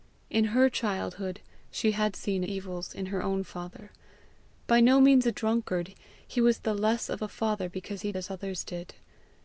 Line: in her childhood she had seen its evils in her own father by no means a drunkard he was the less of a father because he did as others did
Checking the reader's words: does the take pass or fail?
fail